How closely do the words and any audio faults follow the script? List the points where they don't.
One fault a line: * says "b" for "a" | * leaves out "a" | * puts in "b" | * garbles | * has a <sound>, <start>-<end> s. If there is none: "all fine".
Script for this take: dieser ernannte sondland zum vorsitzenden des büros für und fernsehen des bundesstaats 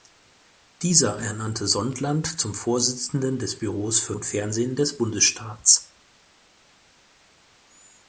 all fine